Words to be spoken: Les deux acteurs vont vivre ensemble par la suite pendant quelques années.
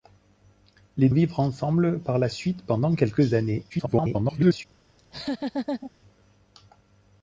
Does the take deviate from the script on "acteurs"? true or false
true